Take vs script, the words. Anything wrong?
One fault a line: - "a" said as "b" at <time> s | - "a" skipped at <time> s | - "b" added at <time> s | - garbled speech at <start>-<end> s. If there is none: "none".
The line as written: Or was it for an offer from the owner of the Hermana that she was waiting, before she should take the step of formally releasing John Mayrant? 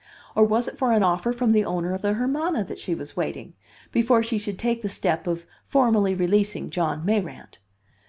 none